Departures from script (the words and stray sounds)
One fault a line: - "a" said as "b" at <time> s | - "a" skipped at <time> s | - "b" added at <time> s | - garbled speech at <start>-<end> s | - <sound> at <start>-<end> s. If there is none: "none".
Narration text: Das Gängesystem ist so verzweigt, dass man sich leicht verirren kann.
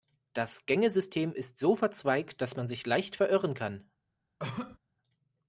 - cough at 4.4-4.8 s